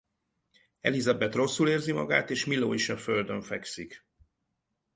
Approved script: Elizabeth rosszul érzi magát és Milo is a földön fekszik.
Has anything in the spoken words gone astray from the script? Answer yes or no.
no